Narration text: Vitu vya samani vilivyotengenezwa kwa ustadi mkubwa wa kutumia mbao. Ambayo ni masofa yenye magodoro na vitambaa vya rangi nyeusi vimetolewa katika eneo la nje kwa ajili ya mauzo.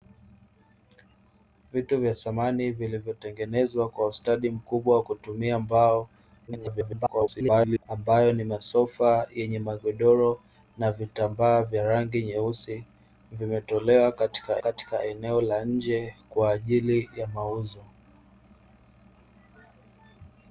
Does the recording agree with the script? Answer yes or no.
no